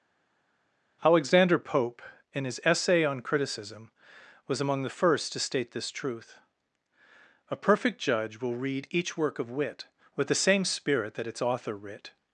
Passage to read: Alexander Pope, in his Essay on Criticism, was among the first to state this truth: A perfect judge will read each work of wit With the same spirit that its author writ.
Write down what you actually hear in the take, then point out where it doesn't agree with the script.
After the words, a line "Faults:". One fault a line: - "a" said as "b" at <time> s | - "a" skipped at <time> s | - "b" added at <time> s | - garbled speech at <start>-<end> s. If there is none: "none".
Alexander Pope, in his Essay on Criticism, was among the first to state this truth: A perfect judge will read each work of wit With the same spirit that its author writ.
Faults:
none